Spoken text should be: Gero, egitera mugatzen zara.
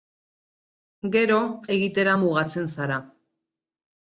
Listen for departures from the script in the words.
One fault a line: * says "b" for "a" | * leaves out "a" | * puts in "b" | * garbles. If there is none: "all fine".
all fine